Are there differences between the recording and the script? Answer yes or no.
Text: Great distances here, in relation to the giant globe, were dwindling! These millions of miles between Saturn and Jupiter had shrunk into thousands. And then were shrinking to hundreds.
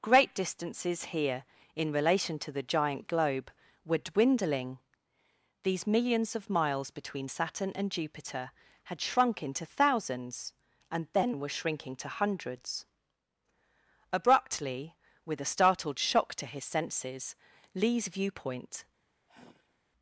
yes